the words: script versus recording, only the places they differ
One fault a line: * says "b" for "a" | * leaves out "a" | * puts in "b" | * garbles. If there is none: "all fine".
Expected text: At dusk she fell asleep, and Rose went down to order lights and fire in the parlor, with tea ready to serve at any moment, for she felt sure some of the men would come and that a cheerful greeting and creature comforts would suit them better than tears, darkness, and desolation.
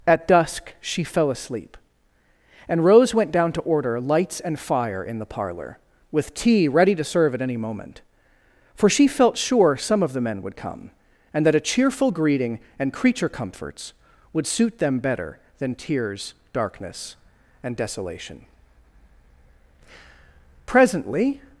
* puts in "Presently"